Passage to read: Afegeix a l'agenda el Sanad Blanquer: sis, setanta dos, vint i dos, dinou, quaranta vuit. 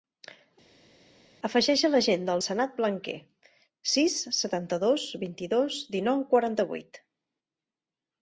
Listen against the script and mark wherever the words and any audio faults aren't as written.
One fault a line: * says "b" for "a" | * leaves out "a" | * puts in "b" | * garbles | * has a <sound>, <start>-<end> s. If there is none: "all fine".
all fine